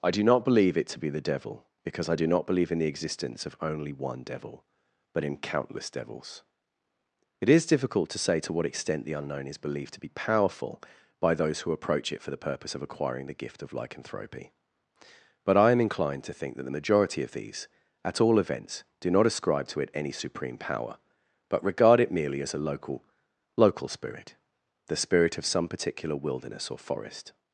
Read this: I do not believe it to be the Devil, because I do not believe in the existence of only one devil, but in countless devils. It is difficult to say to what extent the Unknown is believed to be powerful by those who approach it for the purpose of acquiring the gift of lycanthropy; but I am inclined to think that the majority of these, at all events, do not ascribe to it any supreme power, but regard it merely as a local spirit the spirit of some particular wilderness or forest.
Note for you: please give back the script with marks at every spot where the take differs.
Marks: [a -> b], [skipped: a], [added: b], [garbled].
I do not believe it to be the Devil, because I do not believe in the existence of only one devil, but in countless devils. It is difficult to say to what extent the Unknown is believed to be powerful by those who approach it for the purpose of acquiring the gift of lycanthropy; but I am inclined to think that the majority of these, at all events, do not ascribe to it any supreme power, but regard it merely as a local [added: local] spirit the spirit of some particular wilderness or forest.